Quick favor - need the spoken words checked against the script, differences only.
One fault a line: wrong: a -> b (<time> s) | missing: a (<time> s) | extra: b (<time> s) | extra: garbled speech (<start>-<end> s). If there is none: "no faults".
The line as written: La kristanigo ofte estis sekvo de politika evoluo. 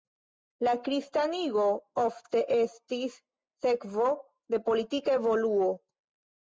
no faults